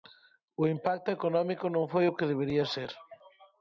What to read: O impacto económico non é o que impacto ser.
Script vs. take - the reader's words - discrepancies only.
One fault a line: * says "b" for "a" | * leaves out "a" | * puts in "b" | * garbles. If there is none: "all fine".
* says "foi" for "é"
* says "debería" for "impacto"